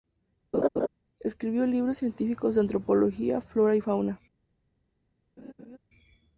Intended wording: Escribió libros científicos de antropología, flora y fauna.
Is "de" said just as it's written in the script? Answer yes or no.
yes